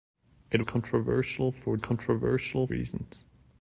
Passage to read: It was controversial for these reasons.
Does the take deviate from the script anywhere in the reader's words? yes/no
yes